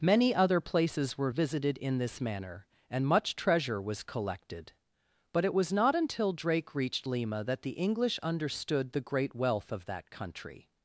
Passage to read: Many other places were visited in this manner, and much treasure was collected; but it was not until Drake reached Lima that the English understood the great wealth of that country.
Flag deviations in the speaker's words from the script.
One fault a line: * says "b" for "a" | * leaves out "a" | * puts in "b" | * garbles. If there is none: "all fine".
all fine